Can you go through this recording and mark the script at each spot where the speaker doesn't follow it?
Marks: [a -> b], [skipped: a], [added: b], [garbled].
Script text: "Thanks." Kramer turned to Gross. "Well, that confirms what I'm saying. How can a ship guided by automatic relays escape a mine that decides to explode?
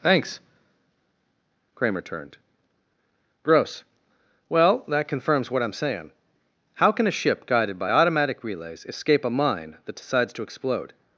"Thanks." Kramer turned [skipped: to] Gross. "Well, that confirms what I'm saying. How can a ship guided by automatic relays escape a mine that decides to explode?